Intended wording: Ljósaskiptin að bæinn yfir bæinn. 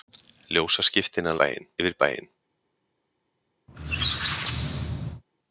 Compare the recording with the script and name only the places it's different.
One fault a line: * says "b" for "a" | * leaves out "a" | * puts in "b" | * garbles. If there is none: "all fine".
all fine